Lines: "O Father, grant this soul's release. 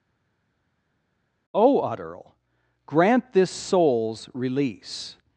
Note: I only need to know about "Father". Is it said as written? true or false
false